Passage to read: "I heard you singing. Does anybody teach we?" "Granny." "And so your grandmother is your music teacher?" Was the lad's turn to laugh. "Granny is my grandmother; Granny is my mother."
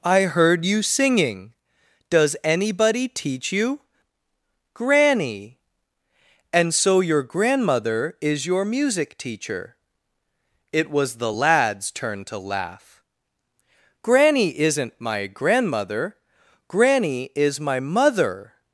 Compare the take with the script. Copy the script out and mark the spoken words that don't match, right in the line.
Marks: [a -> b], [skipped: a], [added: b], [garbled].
"I heard you singing. Does anybody teach [we?" -> you] "Granny." "And so your grandmother is your music teacher?" [added: It] Was the lad's turn to laugh. "Granny [is -> isn't] my grandmother; Granny is my mother."